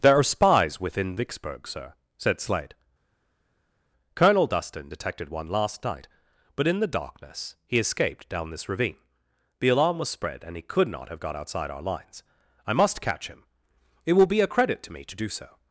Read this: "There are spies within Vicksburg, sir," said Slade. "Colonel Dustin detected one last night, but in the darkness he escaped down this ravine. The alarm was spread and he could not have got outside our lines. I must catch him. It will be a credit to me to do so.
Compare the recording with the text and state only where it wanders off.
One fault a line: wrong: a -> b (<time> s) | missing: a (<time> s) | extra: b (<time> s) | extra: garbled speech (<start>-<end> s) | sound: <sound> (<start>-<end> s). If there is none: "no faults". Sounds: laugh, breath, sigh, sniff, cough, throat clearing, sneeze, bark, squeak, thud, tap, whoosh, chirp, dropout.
no faults